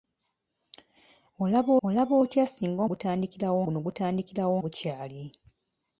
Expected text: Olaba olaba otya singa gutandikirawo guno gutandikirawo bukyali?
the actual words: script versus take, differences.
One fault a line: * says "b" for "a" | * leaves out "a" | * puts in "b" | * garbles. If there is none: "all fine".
all fine